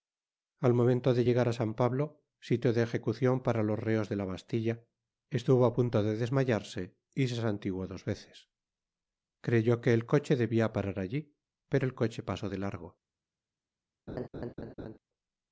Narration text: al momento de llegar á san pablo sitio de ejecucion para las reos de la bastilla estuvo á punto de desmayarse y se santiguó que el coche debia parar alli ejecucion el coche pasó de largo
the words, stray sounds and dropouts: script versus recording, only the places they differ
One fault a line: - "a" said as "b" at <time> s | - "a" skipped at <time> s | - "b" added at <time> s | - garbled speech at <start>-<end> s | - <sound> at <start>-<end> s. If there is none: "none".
- "las" said as "los" at 3.7 s
- "dos veces creyó" added at 7.9 s
- "ejecucion" said as "pero" at 11.7 s
- laugh at 14.1-15.0 s